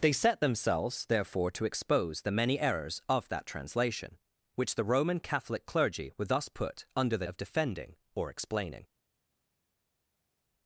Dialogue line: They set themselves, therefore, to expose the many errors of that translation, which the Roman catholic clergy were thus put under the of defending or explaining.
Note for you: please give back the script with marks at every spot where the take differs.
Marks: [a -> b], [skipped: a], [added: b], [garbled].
They set themselves, therefore, to expose the many errors of that translation, which the Roman catholic clergy were thus put under the of defending or explaining.